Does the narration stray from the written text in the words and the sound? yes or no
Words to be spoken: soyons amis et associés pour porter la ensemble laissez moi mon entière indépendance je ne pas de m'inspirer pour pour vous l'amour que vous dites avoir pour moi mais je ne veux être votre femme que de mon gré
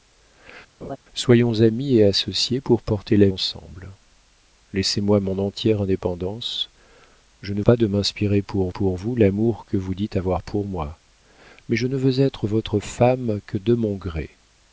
yes